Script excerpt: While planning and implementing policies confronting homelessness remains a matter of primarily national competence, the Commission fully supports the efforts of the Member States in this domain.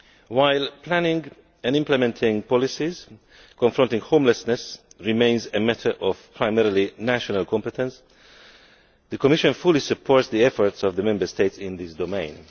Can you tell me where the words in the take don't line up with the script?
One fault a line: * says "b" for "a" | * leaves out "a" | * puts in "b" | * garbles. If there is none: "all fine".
all fine